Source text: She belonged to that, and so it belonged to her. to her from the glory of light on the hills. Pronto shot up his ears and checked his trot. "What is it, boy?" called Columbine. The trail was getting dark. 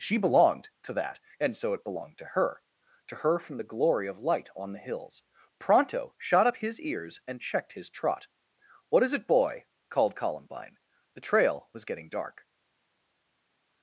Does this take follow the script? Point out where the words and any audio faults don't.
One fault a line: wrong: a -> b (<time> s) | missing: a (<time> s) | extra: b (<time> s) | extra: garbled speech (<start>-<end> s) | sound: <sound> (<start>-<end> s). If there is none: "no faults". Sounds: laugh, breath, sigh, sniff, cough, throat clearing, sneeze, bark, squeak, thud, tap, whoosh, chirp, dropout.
no faults